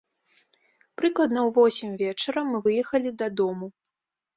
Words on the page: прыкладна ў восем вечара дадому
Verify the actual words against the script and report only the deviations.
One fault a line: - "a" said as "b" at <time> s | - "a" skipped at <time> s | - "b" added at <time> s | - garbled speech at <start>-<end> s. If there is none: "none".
- "мы выехалі" added at 2.5 s